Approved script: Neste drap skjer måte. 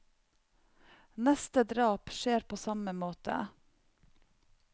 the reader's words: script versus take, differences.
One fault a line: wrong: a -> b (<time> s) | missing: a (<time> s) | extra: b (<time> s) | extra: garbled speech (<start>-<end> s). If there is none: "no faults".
extra: på samme (2.4 s)